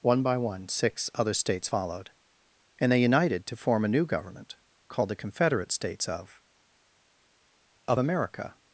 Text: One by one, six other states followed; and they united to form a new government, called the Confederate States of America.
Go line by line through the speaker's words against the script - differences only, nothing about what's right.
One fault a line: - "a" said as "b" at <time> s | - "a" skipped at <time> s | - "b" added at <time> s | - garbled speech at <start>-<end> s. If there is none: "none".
- "of" added at 7.9 s